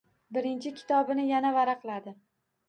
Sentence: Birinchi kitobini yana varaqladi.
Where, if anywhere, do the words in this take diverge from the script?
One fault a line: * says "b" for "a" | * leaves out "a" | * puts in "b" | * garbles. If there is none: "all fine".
all fine